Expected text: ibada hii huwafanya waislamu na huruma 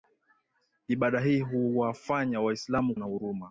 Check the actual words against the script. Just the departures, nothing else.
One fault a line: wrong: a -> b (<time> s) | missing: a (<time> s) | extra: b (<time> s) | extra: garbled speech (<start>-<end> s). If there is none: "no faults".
no faults